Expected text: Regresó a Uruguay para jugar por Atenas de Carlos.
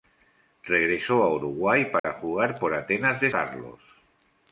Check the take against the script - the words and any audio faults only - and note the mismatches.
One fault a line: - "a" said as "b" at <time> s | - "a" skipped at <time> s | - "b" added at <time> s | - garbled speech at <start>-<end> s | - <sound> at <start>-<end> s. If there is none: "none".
- dropout at 2.0-2.0 s